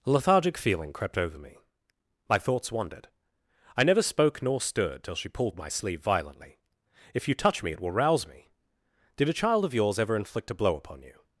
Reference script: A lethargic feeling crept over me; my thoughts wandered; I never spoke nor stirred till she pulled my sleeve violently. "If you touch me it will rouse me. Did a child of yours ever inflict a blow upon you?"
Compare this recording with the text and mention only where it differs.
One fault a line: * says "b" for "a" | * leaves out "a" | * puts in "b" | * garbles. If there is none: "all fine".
all fine